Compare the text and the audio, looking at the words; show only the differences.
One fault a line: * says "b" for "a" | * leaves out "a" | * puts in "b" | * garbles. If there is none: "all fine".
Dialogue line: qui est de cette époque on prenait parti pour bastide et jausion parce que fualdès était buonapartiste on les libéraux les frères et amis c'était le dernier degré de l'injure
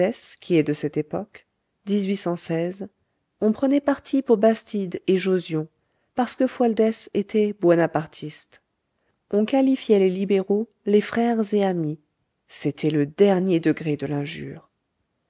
* puts in "qualifiait"